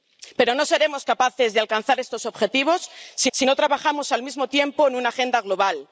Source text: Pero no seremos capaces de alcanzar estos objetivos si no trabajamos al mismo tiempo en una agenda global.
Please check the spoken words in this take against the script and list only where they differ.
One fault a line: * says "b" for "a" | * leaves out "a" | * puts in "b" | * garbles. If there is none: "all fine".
* puts in "si"